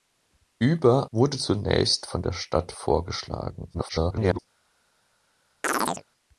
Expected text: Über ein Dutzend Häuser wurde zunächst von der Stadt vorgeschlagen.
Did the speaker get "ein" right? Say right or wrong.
wrong